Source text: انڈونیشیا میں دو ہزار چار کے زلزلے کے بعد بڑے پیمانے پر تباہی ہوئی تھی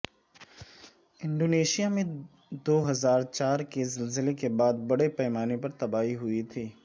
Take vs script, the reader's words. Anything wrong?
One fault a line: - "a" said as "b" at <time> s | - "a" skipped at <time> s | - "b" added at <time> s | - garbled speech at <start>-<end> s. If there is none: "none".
none